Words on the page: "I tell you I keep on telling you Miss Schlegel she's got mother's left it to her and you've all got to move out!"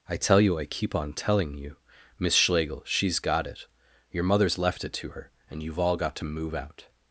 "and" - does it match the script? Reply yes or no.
yes